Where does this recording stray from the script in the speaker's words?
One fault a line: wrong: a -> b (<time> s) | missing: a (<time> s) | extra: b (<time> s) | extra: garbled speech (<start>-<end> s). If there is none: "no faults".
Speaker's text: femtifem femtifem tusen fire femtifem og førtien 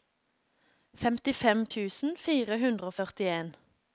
missing: femtifem (1.6 s)
wrong: femtifem -> hundre (2.6 s)